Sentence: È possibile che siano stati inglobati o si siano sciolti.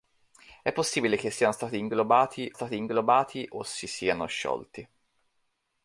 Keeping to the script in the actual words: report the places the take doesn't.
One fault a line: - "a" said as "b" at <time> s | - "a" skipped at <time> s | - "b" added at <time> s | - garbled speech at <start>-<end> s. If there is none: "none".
- "stati inglobati" added at 2.5 s